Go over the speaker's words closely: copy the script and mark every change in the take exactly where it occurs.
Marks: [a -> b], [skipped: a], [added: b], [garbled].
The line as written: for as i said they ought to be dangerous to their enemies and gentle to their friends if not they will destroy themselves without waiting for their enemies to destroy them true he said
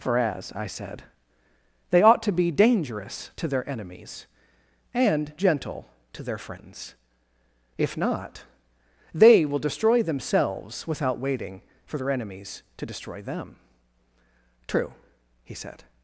for as i said they ought to be dangerous to their enemies and gentle to their friends if not they will destroy themselves without waiting for their enemies to destroy them true he said